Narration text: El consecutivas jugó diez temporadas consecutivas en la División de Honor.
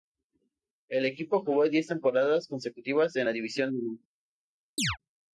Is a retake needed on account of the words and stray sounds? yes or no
yes